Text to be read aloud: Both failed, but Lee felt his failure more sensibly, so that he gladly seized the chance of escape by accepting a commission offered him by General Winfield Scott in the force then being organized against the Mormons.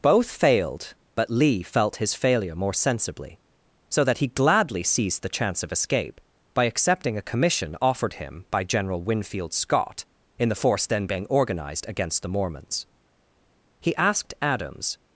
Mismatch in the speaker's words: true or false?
true